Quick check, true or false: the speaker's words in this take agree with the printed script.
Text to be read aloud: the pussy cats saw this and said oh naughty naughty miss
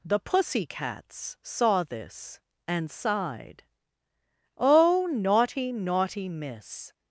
false